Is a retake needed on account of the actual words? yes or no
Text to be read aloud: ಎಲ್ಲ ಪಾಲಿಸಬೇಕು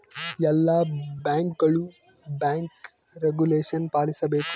yes